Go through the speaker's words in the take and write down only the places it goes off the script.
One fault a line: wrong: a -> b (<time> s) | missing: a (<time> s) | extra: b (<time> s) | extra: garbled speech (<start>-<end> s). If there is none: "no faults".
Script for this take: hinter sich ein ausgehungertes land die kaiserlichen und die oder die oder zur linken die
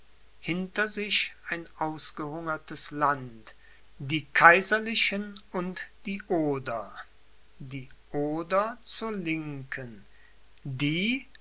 no faults